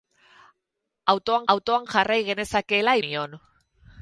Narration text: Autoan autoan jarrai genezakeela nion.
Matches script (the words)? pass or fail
pass